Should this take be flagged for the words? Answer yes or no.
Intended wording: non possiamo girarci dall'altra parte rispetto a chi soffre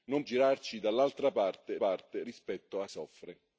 yes